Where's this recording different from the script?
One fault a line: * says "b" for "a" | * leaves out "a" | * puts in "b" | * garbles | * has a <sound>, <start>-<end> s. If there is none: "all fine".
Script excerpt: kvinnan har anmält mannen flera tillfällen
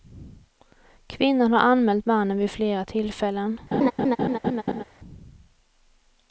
* puts in "vid"
* has a laugh, 3.7-4.8 s